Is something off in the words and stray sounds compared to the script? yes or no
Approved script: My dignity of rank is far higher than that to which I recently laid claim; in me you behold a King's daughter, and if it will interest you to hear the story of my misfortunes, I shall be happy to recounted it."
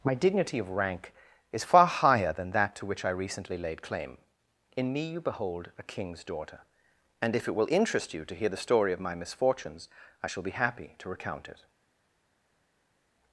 yes